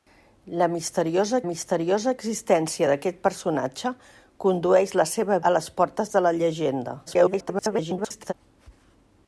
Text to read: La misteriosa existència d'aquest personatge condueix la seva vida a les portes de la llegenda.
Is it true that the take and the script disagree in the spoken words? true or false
true